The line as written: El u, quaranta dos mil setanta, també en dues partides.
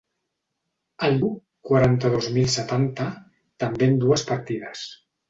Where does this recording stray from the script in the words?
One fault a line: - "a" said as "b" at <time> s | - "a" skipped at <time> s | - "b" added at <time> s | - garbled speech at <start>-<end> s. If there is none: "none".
none